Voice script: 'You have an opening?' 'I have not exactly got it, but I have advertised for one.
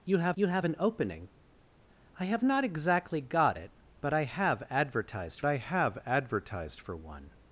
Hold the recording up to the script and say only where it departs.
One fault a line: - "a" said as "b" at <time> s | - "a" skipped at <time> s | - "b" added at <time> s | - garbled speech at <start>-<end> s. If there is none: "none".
- "you have" added at 0.3 s
- "I have advertised" added at 5.4 s